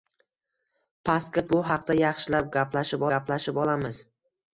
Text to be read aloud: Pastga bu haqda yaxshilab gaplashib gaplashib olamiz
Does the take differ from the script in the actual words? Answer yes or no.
no